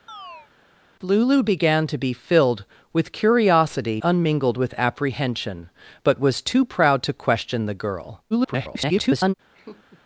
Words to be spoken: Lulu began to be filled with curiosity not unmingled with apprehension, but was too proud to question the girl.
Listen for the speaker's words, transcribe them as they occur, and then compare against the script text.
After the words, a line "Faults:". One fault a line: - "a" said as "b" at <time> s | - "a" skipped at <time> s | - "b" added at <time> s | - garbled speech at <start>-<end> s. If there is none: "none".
Lulu began to be filled with curiosity unmingled with apprehension, but was too proud to question the girl. [garbled]
Faults:
- "not" skipped at 4.0 s
- garbled speech at 8.3-9.3 s